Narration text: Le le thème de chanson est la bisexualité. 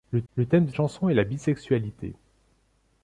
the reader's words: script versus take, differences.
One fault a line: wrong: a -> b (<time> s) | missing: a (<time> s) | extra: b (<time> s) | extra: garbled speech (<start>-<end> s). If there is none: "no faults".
no faults